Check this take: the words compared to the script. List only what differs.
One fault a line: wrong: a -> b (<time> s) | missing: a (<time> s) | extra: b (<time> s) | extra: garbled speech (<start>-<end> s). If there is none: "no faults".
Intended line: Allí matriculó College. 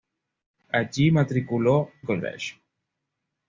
no faults